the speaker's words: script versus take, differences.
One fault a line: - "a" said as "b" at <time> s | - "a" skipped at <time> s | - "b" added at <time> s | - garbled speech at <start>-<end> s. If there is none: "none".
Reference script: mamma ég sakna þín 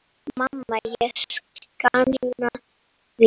none